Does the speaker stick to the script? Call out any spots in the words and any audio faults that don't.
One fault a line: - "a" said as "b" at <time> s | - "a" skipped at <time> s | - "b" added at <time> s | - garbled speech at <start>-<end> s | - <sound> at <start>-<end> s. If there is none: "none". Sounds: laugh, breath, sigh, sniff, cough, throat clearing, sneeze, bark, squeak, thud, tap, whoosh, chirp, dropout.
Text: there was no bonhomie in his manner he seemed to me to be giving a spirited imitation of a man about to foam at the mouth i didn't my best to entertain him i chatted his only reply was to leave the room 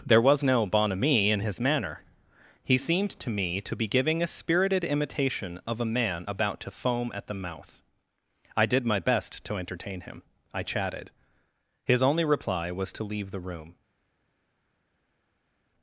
- "didn't" said as "did" at 8.7 s